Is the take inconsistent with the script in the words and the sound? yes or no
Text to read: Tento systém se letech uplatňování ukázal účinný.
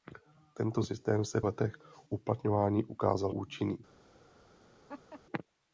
yes